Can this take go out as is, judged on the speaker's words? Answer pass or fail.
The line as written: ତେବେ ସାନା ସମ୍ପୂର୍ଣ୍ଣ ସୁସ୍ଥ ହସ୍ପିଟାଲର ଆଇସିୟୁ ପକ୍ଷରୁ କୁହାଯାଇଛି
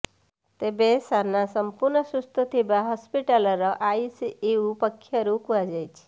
fail